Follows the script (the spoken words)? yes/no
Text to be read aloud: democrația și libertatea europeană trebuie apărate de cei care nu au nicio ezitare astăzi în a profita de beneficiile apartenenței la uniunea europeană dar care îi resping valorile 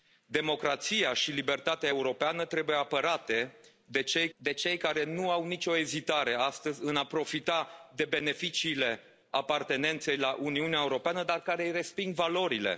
no